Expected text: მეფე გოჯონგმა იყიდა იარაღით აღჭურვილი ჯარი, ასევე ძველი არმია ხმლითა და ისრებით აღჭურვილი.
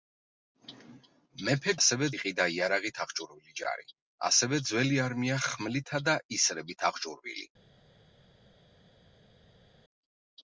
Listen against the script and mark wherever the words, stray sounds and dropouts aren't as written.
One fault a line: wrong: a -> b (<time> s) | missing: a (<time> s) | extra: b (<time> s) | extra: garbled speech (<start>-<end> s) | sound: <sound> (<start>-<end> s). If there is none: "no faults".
wrong: გოჯონგმა -> ასევე (1.8 s)